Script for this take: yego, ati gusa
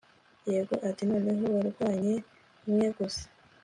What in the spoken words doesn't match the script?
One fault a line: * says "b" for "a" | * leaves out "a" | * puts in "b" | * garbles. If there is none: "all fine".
* puts in "noneho warwanye umwe"